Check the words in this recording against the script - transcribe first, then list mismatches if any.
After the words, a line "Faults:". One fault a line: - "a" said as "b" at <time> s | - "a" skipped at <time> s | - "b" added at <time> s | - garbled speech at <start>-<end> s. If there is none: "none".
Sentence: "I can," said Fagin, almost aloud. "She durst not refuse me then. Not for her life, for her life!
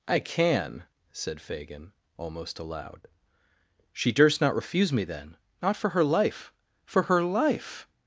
"I can," said Fagin, almost aloud. "She durst not refuse me then. Not for her life, for her life!
Faults:
none